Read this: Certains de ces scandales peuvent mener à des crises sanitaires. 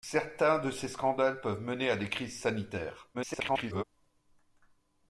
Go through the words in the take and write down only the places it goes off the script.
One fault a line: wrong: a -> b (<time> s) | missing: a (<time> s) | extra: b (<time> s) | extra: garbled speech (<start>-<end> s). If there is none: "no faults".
extra: garbled speech (3.1-3.8 s)